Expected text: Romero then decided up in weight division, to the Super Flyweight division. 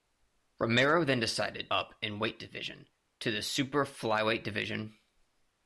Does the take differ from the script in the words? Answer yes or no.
no